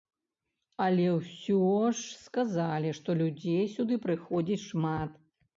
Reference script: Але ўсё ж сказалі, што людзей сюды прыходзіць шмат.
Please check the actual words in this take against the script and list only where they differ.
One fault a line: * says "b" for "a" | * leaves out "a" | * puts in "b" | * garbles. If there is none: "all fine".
all fine